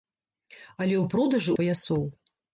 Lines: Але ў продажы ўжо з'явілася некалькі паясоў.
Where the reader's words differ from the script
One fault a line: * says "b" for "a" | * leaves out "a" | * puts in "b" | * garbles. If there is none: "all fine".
* leaves out "ўжо з'явілася некалькі"